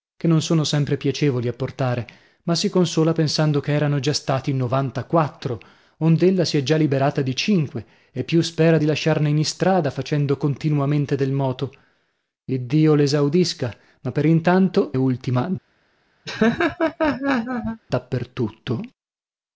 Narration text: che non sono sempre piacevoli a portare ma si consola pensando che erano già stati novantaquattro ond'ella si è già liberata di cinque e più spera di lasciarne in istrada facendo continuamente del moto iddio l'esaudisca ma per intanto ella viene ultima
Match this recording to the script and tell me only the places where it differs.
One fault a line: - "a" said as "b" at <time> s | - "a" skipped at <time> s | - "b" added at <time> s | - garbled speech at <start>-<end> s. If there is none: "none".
- "ella viene" skipped at 14.9 s